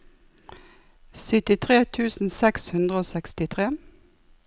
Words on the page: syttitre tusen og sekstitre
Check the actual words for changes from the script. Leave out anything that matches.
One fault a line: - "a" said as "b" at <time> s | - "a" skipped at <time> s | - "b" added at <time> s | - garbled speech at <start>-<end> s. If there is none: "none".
- "seks hundre" added at 2.4 s